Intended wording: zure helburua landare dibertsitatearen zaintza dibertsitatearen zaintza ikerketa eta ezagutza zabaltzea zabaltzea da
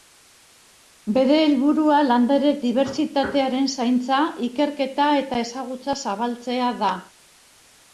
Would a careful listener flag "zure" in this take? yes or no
yes